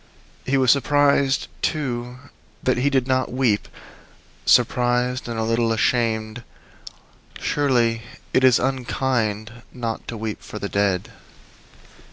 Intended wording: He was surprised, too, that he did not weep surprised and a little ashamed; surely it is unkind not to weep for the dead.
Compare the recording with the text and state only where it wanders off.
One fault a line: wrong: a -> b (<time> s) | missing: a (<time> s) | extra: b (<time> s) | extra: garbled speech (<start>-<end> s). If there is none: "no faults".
no faults